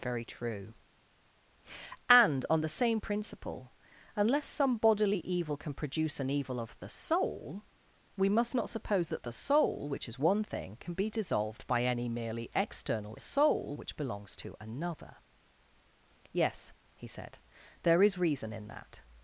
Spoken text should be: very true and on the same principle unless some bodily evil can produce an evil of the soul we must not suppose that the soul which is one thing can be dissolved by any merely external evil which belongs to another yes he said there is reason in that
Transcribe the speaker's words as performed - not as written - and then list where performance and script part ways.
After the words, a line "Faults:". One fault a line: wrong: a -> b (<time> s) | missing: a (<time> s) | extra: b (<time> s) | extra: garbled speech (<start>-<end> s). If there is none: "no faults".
very true and on the same principle unless some bodily evil can produce an evil of the soul we must not suppose that the soul which is one thing can be dissolved by any merely external soul which belongs to another yes he said there is reason in that
Faults:
wrong: evil -> soul (13.2 s)